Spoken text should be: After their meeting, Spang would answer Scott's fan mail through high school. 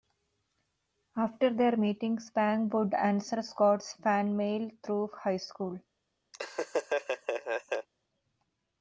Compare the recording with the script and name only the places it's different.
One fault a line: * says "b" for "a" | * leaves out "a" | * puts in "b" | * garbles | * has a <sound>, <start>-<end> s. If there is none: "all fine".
* has a laugh, 6.3-7.9 s